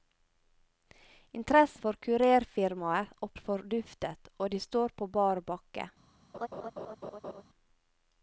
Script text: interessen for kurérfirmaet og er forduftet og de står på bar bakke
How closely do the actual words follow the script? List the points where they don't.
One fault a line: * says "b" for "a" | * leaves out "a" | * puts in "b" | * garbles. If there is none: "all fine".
all fine